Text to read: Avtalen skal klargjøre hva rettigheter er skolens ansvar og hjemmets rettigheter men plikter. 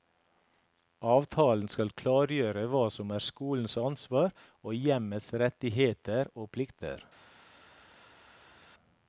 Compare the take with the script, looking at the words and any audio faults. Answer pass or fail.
fail